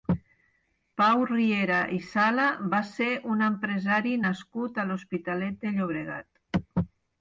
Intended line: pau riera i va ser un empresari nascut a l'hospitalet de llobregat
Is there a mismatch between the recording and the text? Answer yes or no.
yes